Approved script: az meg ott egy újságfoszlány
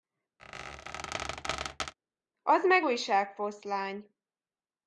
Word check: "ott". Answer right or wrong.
wrong